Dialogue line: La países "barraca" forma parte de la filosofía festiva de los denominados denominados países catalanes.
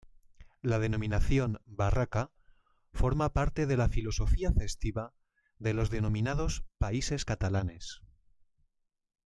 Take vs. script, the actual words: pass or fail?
fail